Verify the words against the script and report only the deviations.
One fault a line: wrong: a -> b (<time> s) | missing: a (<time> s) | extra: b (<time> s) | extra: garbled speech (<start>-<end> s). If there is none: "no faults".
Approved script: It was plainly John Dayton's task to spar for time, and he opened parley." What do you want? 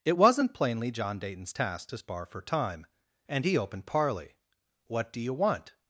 wrong: was -> wasn't (0.2 s)